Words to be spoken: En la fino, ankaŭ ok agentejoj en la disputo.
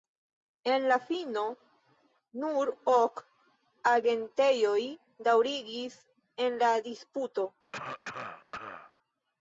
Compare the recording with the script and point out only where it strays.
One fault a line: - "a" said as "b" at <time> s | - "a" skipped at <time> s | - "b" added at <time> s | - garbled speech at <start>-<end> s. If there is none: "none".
- "ankaŭ" said as "nur" at 2.5 s
- "daŭrigis" added at 5.3 s